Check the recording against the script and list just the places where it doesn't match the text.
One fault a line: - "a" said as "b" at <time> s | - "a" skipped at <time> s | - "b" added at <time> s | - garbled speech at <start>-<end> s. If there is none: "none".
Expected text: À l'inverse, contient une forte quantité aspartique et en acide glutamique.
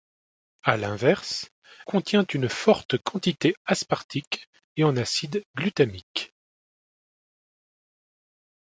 none